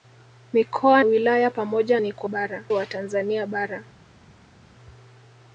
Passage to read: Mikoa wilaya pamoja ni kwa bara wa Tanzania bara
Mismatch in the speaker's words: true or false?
false